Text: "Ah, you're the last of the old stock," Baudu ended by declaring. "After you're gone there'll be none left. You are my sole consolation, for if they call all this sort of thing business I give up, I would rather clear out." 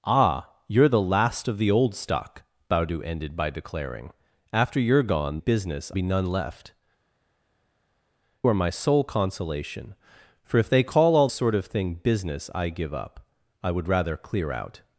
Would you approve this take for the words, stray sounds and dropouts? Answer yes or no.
no